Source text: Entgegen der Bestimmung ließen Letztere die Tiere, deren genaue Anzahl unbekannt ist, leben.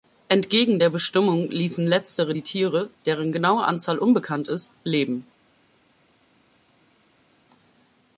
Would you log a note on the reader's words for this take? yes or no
no